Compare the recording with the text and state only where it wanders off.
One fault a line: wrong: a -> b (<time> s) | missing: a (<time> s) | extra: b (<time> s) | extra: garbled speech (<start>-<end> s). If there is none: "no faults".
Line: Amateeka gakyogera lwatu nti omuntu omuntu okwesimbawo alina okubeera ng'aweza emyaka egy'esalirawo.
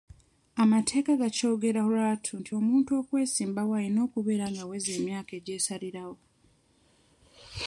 missing: omuntu (2.9 s)